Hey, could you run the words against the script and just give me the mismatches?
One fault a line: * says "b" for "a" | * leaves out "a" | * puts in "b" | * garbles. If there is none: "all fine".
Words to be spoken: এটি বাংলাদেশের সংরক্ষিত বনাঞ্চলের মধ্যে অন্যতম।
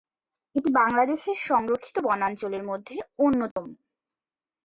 all fine